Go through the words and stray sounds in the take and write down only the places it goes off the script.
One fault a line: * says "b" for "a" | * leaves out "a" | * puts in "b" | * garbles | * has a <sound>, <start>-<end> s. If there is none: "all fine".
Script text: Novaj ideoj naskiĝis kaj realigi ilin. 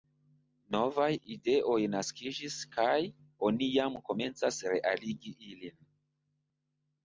* puts in "oni jam komencas"